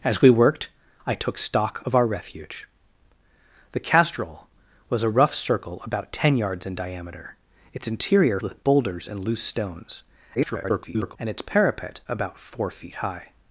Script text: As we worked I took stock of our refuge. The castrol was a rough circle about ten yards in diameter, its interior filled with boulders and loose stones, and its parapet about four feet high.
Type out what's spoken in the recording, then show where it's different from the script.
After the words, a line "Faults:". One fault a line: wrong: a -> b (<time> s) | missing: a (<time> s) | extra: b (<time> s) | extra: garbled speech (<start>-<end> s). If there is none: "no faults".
As we worked I took stock of our refuge. The castrol was a rough circle about ten yards in diameter, its interior with boulders and loose stones, [garbled] and its parapet about four feet high.
Faults:
missing: filled (8.4 s)
extra: garbled speech (10.3-11.2 s)